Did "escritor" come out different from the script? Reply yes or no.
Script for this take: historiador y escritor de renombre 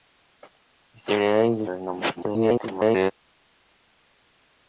yes